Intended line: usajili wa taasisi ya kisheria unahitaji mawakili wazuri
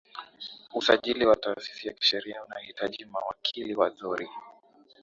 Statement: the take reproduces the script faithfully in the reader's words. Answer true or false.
true